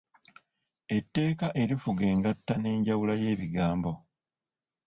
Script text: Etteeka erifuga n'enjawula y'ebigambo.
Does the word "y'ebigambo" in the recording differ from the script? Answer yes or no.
no